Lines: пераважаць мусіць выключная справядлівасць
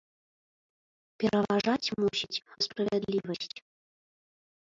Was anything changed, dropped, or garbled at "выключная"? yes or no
yes